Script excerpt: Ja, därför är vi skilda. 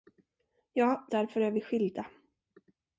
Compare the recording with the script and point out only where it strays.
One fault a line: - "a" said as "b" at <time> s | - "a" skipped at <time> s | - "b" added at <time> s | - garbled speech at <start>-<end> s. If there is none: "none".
none